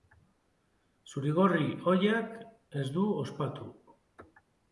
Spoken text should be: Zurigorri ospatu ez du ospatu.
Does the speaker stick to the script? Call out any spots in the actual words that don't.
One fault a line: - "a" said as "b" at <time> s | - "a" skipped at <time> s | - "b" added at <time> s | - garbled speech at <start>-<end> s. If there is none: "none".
- "ospatu" said as "ohiak" at 1.9 s